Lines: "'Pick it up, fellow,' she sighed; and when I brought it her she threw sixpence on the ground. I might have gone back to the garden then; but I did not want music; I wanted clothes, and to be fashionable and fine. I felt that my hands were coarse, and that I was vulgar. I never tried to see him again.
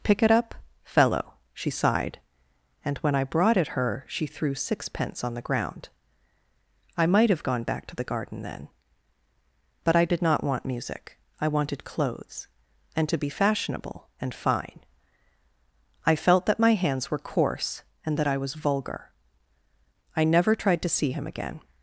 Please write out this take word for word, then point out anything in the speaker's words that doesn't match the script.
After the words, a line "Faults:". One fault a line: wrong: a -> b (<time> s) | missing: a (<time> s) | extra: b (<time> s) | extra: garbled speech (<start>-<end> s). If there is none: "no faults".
"'Pick it up, fellow,' she sighed; and when I brought it her she threw sixpence on the ground. I might have gone back to the garden then; but I did not want music; I wanted clothes, and to be fashionable and fine. I felt that my hands were coarse, and that I was vulgar. I never tried to see him again.
Faults:
no faults